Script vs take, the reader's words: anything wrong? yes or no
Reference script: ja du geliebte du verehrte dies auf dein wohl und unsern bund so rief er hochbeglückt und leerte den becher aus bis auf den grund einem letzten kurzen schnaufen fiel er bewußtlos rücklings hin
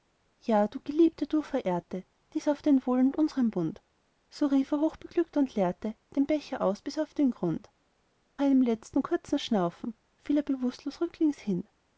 no